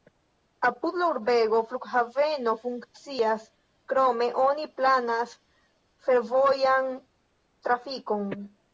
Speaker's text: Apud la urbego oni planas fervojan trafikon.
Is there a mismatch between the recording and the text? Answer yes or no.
yes